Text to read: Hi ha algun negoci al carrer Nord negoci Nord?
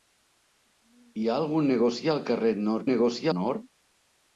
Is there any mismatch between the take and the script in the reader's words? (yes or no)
no